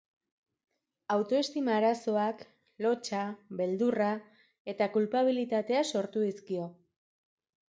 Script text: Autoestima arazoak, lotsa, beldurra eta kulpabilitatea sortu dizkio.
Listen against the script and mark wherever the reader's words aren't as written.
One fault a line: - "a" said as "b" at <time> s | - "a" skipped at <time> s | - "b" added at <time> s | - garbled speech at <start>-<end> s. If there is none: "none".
none